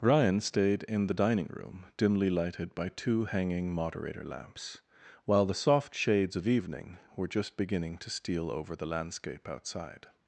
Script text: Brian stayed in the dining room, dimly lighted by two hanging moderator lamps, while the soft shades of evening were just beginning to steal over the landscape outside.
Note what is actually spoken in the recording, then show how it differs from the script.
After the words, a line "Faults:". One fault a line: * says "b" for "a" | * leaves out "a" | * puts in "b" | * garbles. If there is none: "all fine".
Ryan stayed in the dining room, dimly lighted by two hanging moderator lamps, while the soft shades of evening were just beginning to steal over the landscape outside.
Faults:
* says "Ryan" for "Brian"